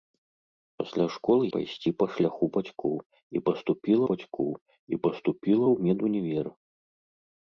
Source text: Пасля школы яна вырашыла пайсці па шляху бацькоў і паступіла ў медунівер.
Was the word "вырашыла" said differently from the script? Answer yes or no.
yes